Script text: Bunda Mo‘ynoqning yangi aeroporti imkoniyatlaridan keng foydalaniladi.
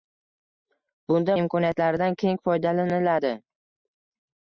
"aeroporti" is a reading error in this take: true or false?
true